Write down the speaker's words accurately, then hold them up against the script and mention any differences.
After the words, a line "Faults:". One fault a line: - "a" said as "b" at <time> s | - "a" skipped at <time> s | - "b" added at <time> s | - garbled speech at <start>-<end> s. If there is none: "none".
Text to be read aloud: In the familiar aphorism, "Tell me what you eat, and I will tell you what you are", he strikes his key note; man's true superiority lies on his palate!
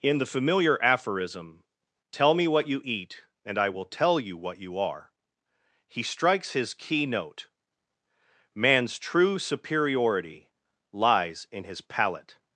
In the familiar aphorism, "Tell me what you eat, and I will tell you what you are", he strikes his key note; man's true superiority lies in his palate!
Faults:
- "on" said as "in" at 11.5 s